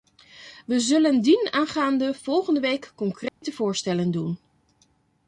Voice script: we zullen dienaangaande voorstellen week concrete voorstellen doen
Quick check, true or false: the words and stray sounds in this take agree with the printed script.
false